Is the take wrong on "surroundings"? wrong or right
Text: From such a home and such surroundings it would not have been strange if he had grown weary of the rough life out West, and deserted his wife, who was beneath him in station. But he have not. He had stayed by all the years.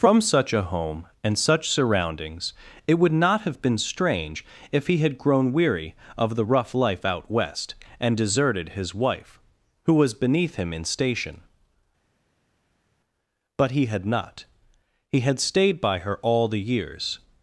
right